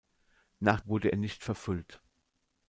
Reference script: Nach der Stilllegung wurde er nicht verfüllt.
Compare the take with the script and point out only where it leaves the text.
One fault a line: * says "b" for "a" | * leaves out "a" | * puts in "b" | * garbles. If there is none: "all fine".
* leaves out "der Stilllegung"